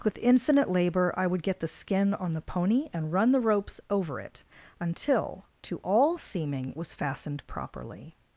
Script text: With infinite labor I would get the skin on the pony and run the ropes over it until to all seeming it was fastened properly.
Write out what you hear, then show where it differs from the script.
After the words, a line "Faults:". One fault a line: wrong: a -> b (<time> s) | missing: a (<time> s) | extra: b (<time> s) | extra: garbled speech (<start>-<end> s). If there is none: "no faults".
With infinite labor I would get the skin on the pony and run the ropes over it until to all seeming was fastened properly.
Faults:
missing: it (6.7 s)